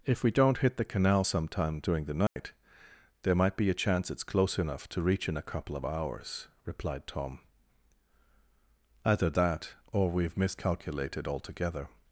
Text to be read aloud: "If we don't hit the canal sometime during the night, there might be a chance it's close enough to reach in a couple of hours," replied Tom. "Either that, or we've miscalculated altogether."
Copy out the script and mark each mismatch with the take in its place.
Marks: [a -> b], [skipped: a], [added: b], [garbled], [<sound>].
"If we don't hit the canal sometime during the night, [dropout] there might be a chance it's close enough to reach in a couple of hours," replied Tom. "Either that, or we've miscalculated altogether."